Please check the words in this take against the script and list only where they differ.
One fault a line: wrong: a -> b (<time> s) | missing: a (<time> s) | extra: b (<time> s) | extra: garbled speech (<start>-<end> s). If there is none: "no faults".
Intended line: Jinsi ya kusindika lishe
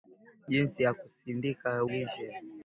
no faults